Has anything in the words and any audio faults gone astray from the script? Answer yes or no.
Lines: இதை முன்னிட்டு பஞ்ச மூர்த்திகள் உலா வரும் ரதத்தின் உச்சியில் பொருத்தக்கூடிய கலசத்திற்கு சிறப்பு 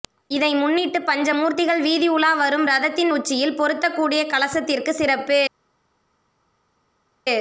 yes